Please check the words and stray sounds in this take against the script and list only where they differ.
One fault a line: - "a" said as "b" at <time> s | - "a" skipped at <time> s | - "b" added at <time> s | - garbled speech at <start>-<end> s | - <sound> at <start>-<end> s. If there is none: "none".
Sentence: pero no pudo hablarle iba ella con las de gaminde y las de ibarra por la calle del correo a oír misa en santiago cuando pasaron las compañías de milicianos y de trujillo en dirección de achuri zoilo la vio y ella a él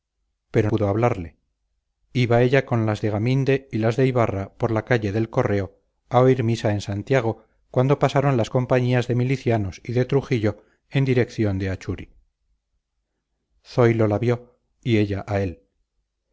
- "no" skipped at 0.7 s